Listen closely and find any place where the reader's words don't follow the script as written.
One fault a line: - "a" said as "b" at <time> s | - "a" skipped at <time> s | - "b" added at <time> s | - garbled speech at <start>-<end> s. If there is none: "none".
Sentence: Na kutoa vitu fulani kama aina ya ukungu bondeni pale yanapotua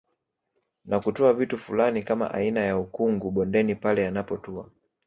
none